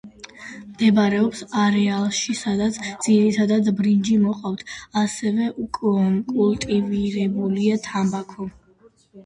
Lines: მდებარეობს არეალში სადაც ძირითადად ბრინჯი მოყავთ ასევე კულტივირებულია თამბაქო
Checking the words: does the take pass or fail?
pass